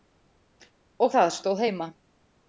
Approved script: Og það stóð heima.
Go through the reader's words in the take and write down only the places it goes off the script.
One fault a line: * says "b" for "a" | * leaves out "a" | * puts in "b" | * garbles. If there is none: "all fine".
all fine